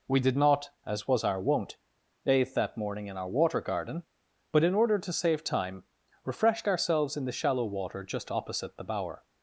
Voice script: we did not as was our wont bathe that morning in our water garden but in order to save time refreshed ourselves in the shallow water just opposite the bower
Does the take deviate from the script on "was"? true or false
false